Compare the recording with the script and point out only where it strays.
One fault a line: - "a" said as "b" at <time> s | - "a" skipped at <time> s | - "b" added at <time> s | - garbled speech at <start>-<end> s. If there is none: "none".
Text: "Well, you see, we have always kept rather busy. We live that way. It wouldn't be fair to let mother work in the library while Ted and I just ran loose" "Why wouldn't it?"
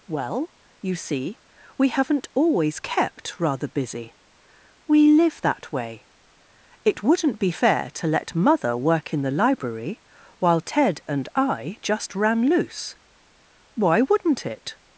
- "have" said as "haven't" at 1.9 s